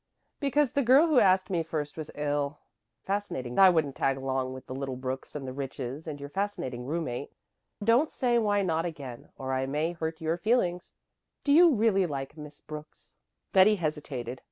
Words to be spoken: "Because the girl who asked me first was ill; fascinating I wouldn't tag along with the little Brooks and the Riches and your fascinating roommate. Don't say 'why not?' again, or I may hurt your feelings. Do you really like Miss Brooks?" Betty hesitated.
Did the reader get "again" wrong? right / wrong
right